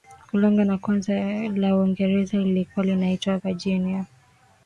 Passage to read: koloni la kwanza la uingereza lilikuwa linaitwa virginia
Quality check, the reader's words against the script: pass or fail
pass